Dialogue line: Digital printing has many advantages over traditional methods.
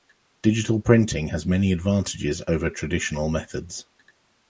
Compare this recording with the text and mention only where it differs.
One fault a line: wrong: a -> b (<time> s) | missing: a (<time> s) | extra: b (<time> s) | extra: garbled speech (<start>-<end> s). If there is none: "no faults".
no faults